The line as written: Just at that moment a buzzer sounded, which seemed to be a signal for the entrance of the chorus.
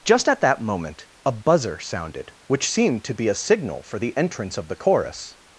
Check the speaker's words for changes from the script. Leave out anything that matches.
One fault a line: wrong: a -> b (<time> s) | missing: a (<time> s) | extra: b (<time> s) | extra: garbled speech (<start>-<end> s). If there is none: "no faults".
no faults